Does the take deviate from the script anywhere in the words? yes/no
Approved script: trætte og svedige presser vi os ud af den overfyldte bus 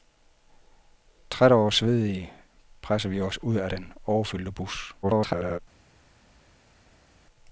yes